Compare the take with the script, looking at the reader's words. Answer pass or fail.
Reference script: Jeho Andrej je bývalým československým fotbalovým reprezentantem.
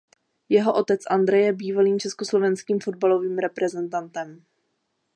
fail